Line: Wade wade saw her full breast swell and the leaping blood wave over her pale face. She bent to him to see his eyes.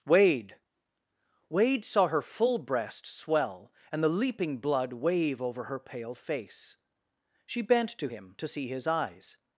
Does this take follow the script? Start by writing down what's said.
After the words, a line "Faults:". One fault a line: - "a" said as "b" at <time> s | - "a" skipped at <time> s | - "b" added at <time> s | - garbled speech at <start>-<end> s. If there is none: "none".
Wade wade saw her full breast swell and the leaping blood wave over her pale face. She bent to him to see his eyes.
Faults:
none